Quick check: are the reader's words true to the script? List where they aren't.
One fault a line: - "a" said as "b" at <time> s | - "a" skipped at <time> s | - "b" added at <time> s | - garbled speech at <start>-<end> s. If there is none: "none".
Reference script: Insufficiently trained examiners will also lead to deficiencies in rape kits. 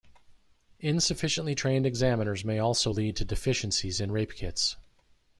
- "will" said as "may" at 2.4 s